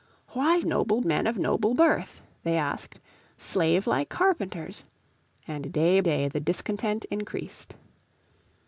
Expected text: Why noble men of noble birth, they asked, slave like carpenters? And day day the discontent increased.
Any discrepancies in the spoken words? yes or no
no